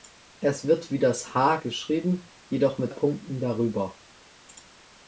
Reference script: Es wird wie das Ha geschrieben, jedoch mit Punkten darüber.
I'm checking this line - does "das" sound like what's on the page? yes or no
yes